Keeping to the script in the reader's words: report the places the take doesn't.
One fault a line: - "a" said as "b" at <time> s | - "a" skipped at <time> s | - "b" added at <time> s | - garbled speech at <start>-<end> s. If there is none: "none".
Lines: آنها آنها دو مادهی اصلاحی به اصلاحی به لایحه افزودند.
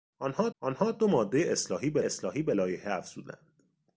none